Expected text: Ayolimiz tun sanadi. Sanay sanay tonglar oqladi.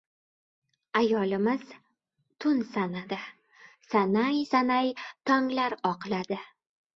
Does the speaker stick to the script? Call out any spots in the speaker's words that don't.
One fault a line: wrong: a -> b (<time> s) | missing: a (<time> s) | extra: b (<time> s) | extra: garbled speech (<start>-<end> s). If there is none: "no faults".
no faults